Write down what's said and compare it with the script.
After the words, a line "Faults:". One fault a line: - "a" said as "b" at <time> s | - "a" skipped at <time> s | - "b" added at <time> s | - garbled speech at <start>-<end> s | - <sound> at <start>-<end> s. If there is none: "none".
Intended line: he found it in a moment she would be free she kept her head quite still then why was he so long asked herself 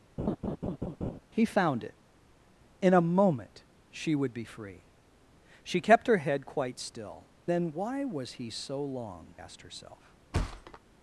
he found it in a moment she would be free she kept her head quite still then why was he so long asked herself
Faults:
- laugh at 0.2-1.2 s
- thud at 10.3-10.8 s